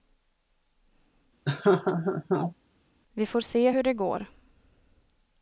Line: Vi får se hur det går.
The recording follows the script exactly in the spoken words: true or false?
true